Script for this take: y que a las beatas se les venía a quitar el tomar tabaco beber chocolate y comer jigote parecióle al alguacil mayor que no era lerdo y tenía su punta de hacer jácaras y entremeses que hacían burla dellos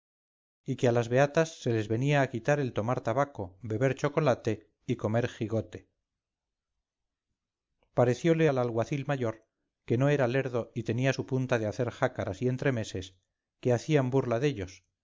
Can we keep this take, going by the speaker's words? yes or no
yes